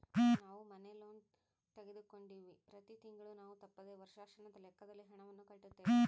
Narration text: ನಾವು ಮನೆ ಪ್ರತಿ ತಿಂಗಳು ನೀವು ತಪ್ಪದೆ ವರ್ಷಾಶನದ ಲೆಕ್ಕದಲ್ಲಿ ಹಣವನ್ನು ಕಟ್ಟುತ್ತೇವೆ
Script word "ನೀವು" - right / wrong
wrong